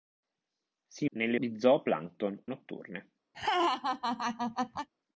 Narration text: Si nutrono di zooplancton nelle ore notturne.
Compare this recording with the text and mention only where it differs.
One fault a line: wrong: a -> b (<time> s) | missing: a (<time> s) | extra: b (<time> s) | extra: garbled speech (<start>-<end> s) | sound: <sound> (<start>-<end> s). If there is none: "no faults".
wrong: nutrono -> nelle (1.1 s)
missing: nelle ore (2.4 s)
sound: laugh (3.3-4.9 s)